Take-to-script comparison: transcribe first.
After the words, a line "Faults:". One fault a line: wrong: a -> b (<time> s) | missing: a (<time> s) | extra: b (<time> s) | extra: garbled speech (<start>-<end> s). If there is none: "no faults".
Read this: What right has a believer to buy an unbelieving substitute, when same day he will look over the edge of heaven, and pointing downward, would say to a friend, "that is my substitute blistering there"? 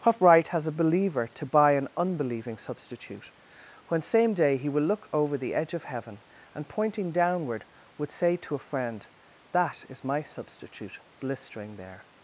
What right has a believer to buy an unbelieving substitute, when same day he will look over the edge of heaven, and pointing downward, would say to a friend, "that is my substitute blistering there"?
Faults:
no faults